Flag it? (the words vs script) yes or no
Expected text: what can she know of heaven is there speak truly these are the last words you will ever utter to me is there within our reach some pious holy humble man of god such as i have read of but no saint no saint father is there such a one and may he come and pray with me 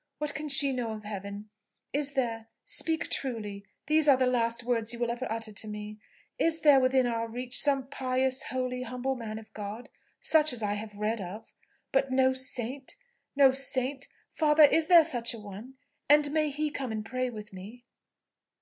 no